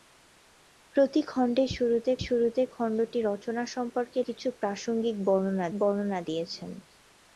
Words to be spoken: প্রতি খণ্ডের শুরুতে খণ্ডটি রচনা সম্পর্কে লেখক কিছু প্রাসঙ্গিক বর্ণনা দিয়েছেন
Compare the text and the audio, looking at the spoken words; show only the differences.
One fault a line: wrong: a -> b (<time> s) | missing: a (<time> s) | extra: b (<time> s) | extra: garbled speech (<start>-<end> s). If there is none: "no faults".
extra: শুরুতে (2.2 s)
missing: লেখক (4.2 s)
extra: বর্ণনা (5.8 s)